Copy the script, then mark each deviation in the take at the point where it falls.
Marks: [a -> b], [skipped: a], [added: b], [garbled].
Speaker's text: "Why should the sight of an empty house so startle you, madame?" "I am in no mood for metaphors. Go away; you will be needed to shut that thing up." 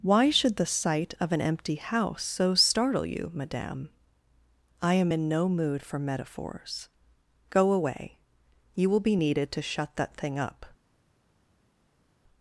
"Why should the sight of an empty house so startle you, madame?" "I am in no mood for metaphors. Go away; you will be needed to shut that thing up."